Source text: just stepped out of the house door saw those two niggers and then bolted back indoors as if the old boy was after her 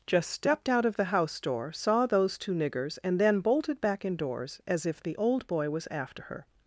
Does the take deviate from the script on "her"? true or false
false